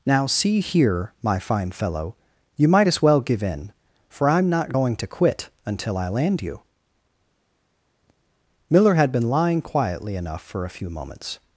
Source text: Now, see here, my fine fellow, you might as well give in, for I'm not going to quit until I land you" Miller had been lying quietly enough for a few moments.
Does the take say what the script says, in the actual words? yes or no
yes